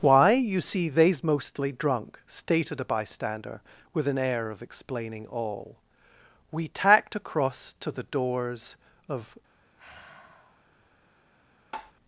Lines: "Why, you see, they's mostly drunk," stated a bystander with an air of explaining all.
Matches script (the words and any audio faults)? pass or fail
fail